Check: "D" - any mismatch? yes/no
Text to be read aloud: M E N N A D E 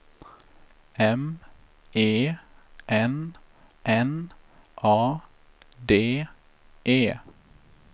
no